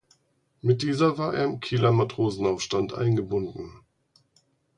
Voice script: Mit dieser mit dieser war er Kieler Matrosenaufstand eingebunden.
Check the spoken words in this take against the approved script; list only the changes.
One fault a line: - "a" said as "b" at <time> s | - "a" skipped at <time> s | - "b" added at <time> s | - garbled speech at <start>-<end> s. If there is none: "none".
- "mit dieser" skipped at 1.2 s
- "im" added at 1.4 s